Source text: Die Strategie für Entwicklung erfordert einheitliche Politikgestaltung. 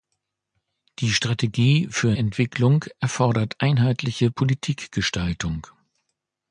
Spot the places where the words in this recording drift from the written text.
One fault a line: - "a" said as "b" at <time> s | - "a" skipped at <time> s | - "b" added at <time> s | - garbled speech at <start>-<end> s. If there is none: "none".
none